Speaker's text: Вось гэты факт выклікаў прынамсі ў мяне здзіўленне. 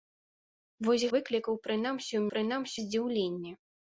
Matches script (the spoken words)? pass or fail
fail